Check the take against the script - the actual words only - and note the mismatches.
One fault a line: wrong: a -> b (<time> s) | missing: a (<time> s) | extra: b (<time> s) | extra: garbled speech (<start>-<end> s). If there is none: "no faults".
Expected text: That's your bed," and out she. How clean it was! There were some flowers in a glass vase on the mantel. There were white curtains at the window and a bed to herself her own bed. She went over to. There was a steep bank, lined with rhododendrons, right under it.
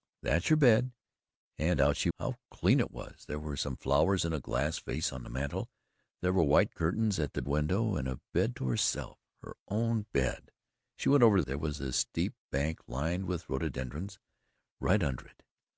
no faults